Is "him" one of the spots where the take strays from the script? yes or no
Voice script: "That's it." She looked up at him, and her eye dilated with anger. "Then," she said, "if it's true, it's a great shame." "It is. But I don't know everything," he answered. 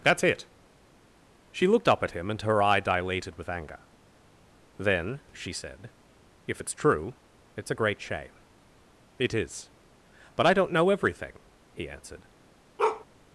no